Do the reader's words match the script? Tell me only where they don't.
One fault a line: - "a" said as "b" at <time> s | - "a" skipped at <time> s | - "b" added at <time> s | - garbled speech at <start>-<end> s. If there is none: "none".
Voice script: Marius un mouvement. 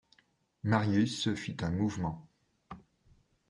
- "fit" added at 1.4 s